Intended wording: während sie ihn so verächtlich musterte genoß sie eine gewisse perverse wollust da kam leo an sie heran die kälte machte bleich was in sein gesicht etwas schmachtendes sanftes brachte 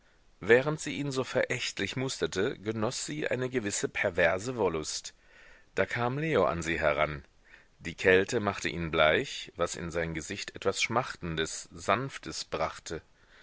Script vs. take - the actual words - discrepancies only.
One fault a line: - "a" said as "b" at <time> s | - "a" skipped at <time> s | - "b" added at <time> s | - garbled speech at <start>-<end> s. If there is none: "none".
- "ihn" added at 8.7 s